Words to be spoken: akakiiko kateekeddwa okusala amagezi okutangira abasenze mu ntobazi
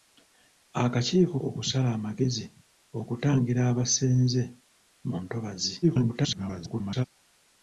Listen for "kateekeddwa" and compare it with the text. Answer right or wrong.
wrong